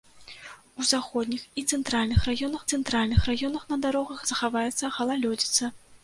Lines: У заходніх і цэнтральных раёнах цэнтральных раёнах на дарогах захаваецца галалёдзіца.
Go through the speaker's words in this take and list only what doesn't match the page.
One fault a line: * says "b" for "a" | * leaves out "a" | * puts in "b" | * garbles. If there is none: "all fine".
all fine